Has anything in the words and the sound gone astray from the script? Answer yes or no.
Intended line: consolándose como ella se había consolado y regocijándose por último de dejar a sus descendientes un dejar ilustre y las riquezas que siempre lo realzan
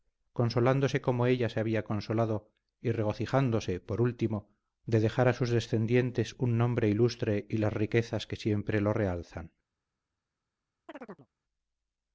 yes